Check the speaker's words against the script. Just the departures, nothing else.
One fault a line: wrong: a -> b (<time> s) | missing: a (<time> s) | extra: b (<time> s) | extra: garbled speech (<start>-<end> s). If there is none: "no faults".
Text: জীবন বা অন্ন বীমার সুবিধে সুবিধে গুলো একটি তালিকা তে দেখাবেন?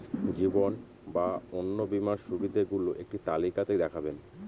missing: সুবিধে (2.6 s)